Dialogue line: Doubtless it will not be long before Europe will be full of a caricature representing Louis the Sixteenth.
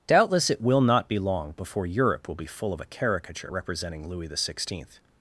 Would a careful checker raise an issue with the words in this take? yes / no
no